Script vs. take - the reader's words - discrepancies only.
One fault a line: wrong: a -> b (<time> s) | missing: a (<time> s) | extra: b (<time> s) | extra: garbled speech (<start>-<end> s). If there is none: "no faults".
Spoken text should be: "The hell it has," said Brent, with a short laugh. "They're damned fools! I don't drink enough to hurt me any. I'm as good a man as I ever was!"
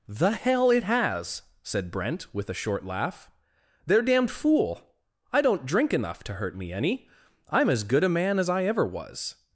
wrong: fools -> fool (4.3 s)